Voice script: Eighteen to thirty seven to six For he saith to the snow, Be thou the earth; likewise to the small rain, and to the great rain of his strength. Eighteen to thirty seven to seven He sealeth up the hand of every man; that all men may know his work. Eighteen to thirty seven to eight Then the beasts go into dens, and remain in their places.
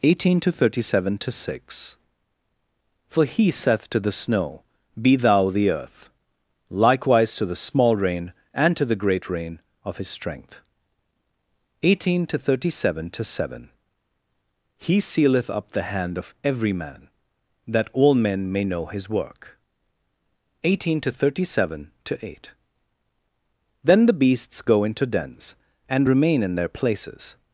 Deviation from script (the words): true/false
false